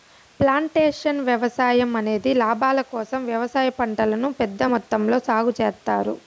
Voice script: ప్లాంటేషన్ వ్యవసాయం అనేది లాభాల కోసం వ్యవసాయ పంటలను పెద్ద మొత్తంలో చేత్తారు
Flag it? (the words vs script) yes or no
yes